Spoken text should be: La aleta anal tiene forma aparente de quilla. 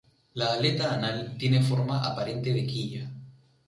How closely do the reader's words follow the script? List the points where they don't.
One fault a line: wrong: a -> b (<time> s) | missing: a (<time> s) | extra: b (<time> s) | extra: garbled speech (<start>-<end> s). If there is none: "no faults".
no faults